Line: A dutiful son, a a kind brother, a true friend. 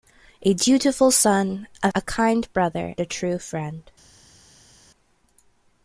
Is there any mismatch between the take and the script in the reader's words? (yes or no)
no